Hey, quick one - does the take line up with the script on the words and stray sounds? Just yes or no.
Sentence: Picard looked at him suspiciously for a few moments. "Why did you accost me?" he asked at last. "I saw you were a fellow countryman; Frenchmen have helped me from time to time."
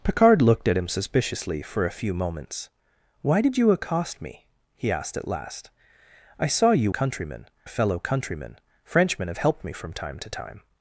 no